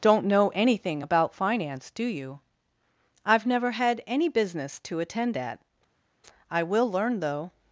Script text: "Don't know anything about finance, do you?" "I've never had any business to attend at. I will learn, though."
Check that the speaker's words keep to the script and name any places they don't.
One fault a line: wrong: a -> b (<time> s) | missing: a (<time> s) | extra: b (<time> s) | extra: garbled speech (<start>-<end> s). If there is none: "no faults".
no faults